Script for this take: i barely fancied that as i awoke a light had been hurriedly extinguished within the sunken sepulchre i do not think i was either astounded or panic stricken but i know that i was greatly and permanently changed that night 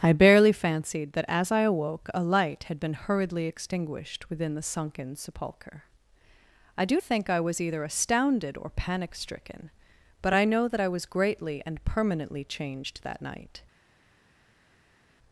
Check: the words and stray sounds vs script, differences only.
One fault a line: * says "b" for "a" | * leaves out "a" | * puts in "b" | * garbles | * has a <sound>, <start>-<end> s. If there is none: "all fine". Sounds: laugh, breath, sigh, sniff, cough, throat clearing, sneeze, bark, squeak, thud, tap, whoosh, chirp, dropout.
* leaves out "not"